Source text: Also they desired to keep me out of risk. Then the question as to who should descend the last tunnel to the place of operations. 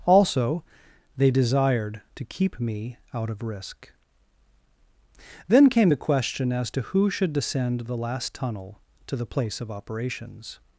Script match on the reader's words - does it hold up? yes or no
no